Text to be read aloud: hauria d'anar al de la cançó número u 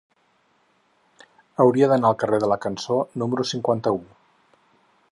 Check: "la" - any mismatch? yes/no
no